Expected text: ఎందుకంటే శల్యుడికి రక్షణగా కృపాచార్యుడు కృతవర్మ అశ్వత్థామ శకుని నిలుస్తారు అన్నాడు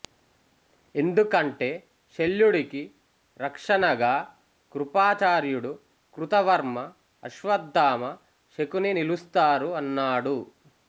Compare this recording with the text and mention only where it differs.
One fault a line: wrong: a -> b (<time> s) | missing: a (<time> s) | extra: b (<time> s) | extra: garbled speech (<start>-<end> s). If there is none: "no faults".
no faults